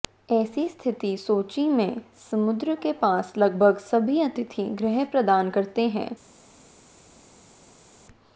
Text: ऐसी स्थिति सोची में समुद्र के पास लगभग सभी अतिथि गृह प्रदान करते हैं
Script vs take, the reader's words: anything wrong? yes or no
no